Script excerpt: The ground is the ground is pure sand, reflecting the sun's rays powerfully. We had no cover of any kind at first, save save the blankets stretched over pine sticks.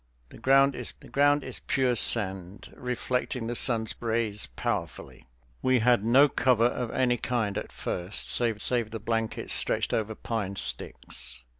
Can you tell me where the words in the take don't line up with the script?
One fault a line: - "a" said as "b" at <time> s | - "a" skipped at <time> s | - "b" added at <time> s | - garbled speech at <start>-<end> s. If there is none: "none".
none